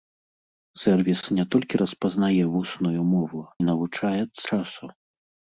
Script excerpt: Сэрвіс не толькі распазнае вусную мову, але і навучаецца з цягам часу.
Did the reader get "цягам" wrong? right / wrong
wrong